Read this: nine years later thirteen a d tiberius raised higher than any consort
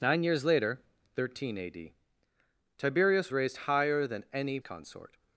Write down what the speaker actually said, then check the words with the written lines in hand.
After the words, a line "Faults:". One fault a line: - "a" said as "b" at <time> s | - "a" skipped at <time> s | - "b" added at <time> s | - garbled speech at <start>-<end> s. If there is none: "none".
nine years later thirteen a d tiberius raised higher than any consort
Faults:
none